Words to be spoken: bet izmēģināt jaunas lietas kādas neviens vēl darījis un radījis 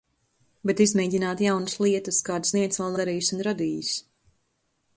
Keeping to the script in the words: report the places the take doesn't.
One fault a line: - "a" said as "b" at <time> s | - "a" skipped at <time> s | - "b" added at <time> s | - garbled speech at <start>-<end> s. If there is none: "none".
none